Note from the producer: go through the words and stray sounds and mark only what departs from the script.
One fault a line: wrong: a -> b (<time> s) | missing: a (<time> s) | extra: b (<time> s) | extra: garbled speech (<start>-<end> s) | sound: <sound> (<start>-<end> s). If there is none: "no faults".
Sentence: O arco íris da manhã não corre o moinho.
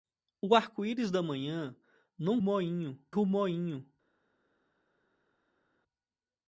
wrong: corre -> moinho (2.4 s)